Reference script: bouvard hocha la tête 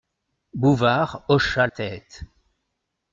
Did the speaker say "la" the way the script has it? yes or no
no